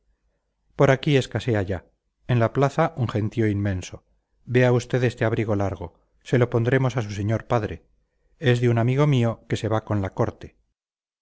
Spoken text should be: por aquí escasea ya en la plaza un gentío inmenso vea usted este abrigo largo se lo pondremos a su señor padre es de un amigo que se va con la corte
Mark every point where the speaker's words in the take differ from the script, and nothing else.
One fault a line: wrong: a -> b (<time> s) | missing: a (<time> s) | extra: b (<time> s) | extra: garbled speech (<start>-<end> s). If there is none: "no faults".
extra: mío (9.1 s)